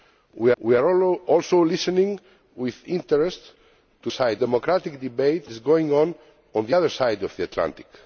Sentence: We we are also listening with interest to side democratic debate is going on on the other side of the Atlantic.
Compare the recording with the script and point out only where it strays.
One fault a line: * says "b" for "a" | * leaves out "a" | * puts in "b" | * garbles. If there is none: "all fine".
all fine